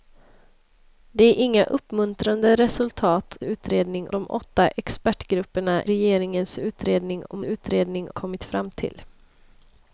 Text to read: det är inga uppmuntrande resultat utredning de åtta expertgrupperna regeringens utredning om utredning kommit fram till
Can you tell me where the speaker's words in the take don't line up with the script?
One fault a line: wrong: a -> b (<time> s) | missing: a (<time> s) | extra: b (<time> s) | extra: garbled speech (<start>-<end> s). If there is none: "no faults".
no faults